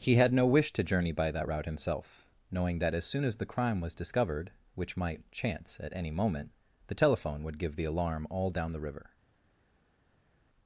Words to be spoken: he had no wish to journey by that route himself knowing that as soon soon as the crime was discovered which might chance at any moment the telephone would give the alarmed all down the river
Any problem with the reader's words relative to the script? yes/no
yes